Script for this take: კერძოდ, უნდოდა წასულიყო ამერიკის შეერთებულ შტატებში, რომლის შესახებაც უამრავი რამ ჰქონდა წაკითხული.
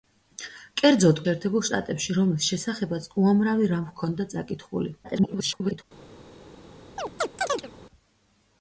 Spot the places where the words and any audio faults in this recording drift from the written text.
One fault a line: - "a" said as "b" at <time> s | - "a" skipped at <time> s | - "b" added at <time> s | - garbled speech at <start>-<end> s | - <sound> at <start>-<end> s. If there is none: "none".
- "უნდოდა წასულიყო ამერიკის" skipped at 1.2 s
- garbled speech at 5.0-5.8 s
- chirp at 7.0-7.7 s